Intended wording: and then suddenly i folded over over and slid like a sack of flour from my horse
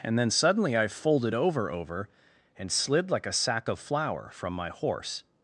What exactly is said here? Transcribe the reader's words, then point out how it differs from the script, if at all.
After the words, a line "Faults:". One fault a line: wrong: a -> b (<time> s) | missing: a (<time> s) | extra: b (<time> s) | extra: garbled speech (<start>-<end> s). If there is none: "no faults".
and then suddenly i folded over over and slid like a sack of flour from my horse
Faults:
no faults